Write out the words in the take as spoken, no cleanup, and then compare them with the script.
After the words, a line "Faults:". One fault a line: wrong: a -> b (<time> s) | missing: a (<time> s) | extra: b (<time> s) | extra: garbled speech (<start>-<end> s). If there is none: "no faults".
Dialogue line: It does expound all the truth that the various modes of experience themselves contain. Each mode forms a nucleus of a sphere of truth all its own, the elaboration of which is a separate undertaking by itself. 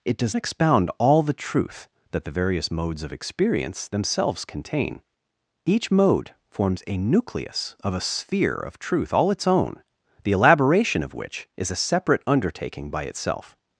It does expound all the truth that the various modes of experience themselves contain. Each mode forms a nucleus of a sphere of truth all its own, the elaboration of which is a separate undertaking by itself.
Faults:
no faults